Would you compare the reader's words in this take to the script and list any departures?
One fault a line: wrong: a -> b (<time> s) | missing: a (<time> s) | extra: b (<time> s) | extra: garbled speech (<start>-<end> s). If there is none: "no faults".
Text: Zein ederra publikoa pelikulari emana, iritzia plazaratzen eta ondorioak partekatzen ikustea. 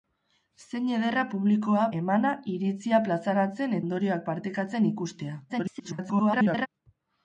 missing: pelikulari (1.8 s)
missing: eta (3.8 s)
extra: garbled speech (5.5-6.7 s)